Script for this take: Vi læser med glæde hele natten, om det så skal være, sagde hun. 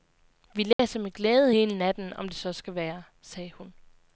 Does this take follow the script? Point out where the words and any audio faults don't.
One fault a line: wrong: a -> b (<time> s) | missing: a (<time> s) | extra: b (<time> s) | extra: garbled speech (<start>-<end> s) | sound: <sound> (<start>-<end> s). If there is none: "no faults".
sound: dropout (0.7-0.8 s)